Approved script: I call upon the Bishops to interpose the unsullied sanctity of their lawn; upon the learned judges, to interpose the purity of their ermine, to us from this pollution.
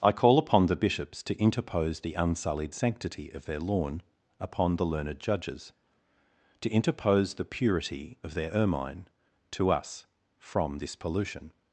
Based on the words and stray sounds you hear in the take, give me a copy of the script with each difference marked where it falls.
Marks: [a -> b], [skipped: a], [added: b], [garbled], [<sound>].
I call upon the Bishops to interpose the unsullied sanctity of their lawn; upon the learned judges, to interpose the purity of their ermine, to us from this pollution.